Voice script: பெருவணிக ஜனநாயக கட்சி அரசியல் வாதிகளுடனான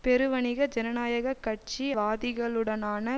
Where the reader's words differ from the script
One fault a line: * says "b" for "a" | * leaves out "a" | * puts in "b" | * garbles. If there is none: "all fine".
* leaves out "அரசியல்"